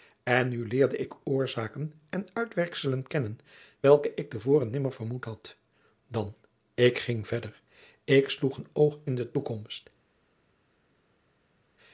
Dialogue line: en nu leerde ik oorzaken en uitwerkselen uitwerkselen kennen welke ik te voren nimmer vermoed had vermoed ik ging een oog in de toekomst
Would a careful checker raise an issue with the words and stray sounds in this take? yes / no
yes